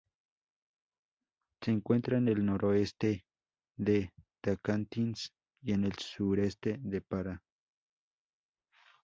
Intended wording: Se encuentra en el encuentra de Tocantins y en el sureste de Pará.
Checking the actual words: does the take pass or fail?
fail